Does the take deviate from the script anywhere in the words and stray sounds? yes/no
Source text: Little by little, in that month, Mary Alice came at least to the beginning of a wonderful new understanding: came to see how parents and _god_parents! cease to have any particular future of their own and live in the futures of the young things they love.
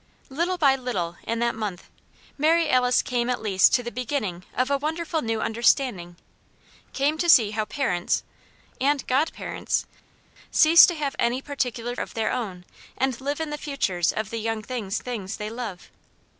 yes